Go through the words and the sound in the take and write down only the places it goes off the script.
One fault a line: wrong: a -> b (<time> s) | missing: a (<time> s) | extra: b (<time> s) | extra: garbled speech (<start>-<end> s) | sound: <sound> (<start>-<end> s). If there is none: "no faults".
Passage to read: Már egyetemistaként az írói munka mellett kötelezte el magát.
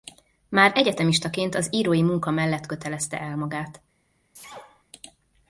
sound: sneeze (4.3-4.8 s)